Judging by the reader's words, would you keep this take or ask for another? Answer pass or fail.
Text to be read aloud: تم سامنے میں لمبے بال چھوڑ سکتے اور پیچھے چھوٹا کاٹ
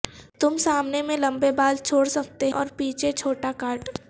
pass